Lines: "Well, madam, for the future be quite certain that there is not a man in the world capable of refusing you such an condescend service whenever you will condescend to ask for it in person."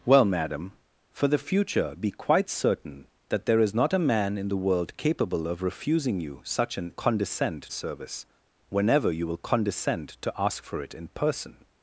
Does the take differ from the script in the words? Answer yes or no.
no